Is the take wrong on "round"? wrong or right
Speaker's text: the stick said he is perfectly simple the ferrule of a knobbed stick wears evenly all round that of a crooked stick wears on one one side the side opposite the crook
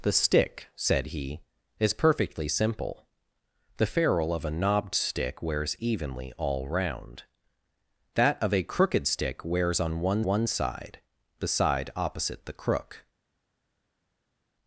right